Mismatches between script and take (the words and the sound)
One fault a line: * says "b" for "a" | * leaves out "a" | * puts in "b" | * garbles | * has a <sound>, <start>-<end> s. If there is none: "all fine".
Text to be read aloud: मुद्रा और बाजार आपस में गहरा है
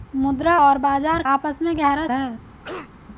* has a cough, 2.6-2.9 s